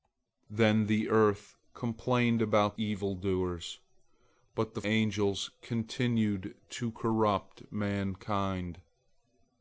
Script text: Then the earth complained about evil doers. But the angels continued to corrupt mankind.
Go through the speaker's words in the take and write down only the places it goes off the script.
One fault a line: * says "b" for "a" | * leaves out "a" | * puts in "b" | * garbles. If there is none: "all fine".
all fine